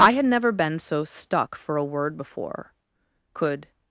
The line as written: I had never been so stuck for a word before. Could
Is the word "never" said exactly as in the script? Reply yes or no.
yes